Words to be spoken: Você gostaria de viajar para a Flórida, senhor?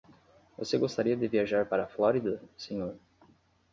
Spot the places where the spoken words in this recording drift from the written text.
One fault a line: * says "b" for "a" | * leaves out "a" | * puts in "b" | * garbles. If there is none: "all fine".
all fine